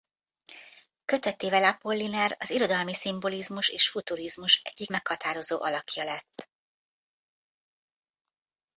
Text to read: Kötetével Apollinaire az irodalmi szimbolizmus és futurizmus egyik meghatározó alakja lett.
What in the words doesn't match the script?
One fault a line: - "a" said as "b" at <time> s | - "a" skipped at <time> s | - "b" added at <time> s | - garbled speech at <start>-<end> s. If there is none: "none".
none